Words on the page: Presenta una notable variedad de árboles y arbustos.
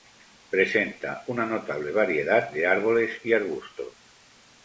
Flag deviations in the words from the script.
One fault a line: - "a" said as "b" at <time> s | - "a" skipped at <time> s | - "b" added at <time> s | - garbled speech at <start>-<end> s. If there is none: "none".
none